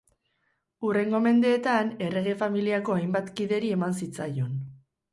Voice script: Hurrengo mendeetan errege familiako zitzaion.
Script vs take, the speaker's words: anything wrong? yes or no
yes